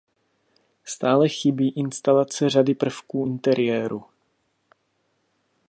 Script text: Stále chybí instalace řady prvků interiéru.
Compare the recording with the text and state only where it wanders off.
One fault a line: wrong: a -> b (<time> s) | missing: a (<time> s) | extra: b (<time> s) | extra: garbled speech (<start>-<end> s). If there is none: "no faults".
no faults